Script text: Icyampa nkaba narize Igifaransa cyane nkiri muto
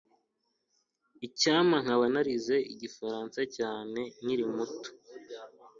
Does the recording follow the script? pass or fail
pass